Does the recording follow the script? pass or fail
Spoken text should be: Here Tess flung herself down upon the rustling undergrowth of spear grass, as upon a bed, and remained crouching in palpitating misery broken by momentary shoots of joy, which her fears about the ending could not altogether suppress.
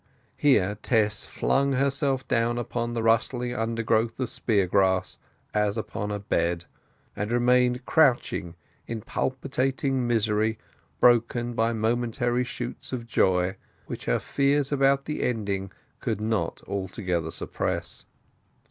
pass